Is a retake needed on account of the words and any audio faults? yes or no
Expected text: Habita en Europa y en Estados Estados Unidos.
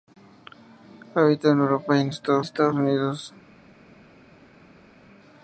no